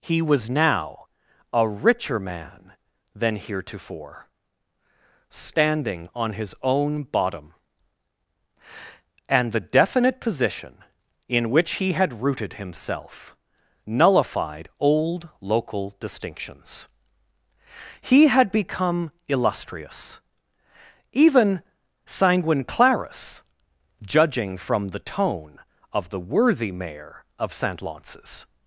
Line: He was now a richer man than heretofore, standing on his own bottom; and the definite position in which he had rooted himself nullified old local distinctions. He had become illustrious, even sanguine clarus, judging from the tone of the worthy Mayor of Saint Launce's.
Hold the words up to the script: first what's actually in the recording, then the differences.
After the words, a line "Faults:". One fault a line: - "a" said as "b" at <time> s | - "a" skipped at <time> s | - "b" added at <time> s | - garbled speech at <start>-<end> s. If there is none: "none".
He was now a richer man than heretofore, standing on his own bottom; and the definite position in which he had rooted himself nullified old local distinctions. He had become illustrious, even sanguine clarus, judging from the tone of the worthy Mayor of Saint Launce's.
Faults:
none